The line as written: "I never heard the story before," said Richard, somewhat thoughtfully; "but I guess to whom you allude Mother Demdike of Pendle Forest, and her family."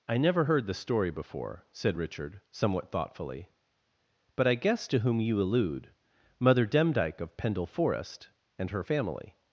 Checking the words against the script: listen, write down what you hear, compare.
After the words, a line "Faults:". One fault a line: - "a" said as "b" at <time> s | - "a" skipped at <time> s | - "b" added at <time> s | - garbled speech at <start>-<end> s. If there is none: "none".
"I never heard the story before," said Richard, somewhat thoughtfully; "but I guess to whom you allude Mother Demdike of Pendle Forest, and her family."
Faults:
none